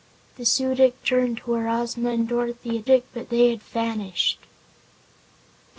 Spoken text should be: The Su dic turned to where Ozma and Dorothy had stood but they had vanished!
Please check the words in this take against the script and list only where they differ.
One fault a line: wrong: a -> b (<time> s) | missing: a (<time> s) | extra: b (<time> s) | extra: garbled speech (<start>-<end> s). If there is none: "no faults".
wrong: stood -> dic (2.8 s)